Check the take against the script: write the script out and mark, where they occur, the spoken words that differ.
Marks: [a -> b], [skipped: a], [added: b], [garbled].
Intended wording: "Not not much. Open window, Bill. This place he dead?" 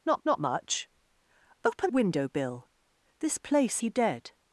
"Not not much. Open window, Bill. This place he dead?"